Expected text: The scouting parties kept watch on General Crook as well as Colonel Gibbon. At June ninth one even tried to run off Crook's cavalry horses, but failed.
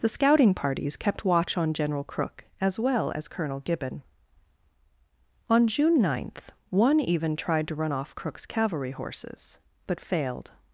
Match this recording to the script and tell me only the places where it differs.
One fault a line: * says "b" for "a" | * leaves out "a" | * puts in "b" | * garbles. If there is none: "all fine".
* says "On" for "At"